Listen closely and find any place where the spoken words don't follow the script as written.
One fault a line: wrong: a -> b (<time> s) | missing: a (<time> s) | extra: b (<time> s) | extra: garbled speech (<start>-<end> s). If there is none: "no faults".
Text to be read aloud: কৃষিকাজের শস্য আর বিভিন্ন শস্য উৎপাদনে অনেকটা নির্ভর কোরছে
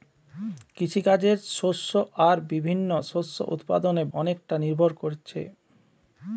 no faults